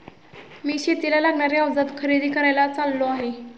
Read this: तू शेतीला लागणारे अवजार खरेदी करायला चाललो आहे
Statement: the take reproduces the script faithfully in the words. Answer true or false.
false